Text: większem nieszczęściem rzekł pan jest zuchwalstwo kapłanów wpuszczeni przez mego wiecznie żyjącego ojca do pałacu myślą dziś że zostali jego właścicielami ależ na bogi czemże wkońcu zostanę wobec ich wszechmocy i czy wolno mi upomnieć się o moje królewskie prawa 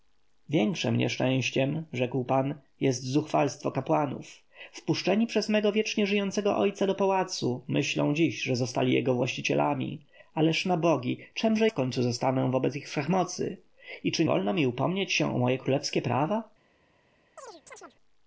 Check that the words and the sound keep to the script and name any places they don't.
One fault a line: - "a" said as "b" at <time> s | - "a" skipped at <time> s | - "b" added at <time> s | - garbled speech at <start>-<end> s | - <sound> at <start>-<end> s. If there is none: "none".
- chirp at 17.4-18.0 s